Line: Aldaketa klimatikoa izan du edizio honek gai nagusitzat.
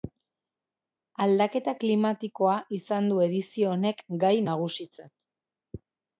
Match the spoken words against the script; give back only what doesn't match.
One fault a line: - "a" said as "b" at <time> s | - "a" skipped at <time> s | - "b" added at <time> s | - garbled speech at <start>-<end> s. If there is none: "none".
none